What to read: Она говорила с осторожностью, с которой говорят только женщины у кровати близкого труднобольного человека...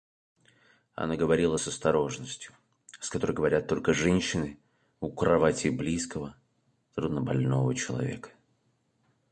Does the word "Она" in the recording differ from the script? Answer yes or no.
no